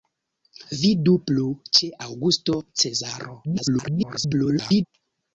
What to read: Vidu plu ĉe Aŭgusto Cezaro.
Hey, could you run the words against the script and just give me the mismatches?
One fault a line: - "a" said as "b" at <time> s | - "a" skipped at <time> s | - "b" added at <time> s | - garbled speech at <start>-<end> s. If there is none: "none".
- garbled speech at 3.4-4.9 s